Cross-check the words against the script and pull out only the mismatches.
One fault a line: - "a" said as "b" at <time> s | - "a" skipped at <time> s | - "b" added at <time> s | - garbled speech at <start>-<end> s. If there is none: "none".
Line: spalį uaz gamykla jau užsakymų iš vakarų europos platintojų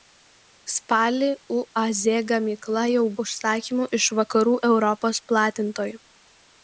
none